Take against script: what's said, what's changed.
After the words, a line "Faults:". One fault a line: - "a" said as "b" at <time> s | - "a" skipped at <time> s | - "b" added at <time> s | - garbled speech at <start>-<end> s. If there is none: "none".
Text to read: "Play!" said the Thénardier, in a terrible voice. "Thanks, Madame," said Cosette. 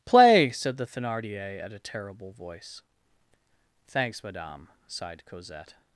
"Play!" said the Thénardier, at a terrible voice. "Thanks, Madame," sighed Cosette.
Faults:
- "in" said as "at" at 1.6 s
- "said" said as "sighed" at 4.9 s